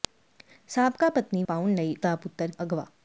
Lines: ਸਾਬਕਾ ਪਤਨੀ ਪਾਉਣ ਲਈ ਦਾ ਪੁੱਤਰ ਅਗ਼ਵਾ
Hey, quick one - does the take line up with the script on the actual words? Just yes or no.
yes